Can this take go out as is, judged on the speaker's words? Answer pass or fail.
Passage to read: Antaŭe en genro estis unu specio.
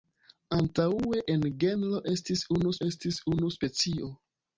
fail